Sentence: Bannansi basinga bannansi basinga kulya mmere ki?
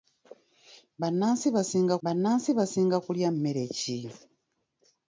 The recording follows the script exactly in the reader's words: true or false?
true